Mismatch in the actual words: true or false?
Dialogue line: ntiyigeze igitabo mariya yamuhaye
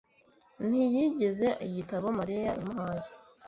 false